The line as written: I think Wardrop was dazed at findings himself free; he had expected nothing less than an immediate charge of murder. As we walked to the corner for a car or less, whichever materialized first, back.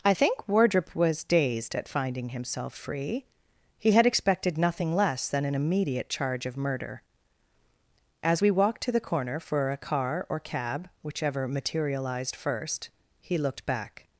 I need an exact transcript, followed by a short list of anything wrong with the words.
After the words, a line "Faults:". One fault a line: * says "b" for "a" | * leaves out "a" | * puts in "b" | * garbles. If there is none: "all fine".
I think Wardrop was dazed at finding himself free; he had expected nothing less than an immediate charge of murder. As we walked to the corner for a car or cab, whichever materialized first, he looked back.
Faults:
* says "finding" for "findings"
* says "cab" for "less"
* puts in "he looked"